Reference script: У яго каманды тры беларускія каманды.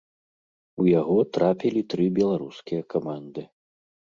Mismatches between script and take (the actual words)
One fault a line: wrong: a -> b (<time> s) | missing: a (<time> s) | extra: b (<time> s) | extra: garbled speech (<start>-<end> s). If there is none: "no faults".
wrong: каманды -> трапілі (1.4 s)